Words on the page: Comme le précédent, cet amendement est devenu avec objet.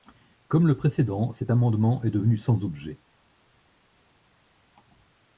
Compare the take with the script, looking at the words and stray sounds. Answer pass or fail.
fail